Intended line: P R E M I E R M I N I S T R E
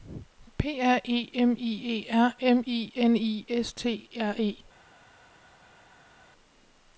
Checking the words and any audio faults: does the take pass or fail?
pass